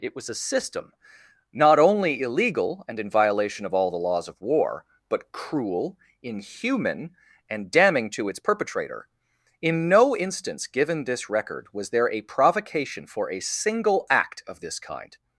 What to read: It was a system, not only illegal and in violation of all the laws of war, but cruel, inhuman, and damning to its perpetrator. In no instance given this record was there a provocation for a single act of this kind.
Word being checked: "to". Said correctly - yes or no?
yes